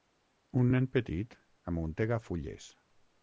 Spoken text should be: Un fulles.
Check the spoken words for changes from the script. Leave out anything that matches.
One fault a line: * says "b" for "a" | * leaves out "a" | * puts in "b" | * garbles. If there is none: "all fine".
* puts in "nen petit amuntega"